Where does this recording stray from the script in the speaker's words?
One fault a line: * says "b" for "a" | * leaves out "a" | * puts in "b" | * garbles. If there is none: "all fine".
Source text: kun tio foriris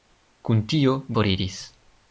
all fine